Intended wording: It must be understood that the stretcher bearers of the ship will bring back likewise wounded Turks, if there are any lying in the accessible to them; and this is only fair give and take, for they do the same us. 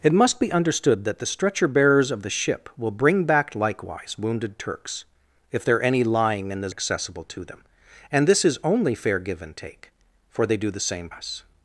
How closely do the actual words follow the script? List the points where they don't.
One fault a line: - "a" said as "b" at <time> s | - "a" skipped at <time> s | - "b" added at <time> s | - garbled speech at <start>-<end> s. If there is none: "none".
none